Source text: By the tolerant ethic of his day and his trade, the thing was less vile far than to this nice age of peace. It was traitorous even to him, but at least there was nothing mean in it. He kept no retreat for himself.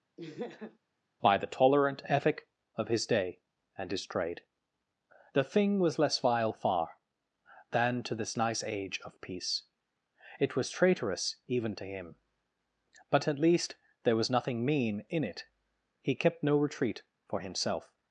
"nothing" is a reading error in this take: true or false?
false